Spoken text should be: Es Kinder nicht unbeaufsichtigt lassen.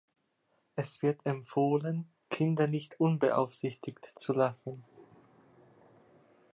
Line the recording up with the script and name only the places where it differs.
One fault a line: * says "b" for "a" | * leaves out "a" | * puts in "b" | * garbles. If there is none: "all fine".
* puts in "wird empfohlen"
* puts in "zu"